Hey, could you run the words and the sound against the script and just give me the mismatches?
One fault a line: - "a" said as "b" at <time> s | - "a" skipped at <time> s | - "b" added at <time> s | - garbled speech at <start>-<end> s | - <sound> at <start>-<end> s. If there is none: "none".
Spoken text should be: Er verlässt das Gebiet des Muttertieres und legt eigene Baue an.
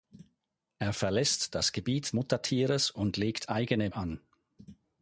- "des" skipped at 2.1 s
- "Baue" skipped at 3.9 s